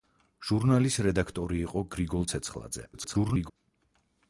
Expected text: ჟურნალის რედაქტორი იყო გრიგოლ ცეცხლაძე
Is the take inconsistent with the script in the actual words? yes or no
yes